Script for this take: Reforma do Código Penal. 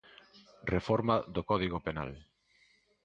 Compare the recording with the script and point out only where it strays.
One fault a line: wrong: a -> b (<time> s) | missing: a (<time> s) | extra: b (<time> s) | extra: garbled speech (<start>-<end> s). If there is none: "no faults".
no faults